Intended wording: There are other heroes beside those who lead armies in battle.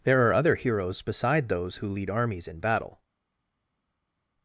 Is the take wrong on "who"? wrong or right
right